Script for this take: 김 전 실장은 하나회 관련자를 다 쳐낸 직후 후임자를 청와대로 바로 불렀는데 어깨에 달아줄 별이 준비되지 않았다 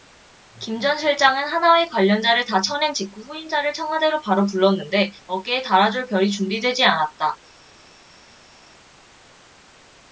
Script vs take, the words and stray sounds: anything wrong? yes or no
no